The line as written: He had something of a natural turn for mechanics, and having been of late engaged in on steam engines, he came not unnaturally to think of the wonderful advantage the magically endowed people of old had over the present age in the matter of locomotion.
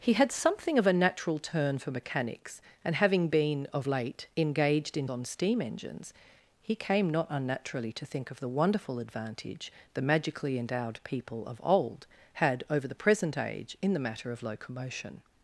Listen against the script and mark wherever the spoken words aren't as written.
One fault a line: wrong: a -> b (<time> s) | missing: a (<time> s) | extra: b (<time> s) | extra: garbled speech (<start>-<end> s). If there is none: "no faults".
no faults